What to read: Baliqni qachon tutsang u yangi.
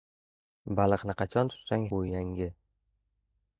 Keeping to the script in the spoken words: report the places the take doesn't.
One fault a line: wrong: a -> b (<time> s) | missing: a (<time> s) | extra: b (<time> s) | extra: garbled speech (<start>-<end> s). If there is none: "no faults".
no faults